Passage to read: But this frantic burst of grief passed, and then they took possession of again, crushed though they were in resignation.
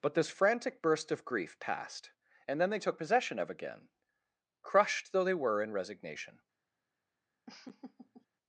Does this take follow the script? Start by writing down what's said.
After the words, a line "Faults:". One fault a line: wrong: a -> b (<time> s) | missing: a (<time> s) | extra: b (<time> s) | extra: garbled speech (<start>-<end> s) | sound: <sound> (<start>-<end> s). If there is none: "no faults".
But this frantic burst of grief passed, and then they took possession of again, crushed though they were in resignation.
Faults:
sound: laugh (7.5-8.3 s)